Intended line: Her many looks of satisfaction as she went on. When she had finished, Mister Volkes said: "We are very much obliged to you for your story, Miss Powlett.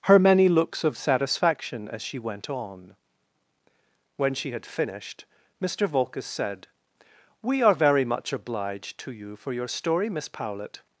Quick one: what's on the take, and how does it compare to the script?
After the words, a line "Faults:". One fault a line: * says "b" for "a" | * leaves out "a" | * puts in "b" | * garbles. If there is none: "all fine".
Her many looks of satisfaction as she went on. When she had finished, Mister Volkes said: "We are very much obliged to you for your story, Miss Powlett.
Faults:
all fine